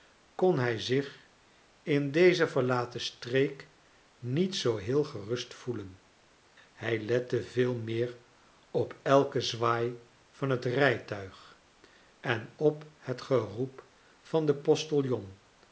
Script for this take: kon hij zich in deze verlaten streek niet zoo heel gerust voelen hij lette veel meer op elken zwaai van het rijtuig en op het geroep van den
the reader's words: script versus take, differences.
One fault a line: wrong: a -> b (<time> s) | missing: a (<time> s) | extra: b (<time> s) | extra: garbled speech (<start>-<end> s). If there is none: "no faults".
no faults